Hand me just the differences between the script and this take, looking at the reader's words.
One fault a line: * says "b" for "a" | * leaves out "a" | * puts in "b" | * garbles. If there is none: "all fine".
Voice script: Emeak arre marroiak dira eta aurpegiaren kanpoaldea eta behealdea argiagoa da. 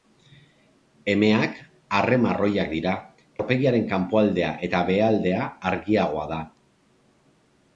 * leaves out "eta"